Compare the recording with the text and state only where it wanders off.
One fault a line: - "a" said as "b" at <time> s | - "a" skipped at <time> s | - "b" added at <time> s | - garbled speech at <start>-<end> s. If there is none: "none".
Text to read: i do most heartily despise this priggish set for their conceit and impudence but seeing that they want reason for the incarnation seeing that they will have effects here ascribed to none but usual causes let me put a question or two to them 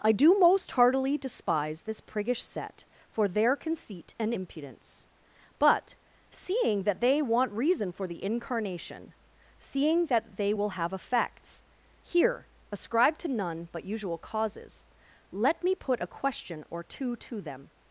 none